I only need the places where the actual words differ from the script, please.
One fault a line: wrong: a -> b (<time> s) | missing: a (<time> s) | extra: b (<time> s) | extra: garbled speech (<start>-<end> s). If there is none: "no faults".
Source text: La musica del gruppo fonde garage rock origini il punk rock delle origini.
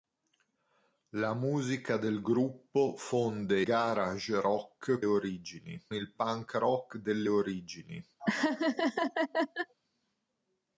no faults